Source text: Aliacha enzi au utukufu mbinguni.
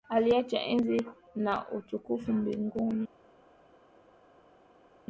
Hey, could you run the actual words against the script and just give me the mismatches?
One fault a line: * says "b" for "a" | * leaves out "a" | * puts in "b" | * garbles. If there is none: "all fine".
* says "na" for "au"